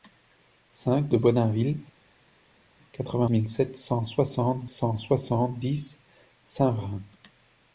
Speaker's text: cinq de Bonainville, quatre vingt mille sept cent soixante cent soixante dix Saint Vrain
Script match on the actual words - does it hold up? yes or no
yes